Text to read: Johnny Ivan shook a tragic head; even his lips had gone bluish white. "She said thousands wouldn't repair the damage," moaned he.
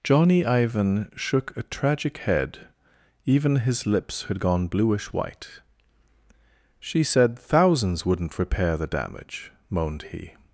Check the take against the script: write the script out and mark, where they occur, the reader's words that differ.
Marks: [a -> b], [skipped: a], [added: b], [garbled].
Johnny Ivan shook a tragic head; even his lips had gone bluish white. "She said thousands wouldn't repair the damage," moaned he.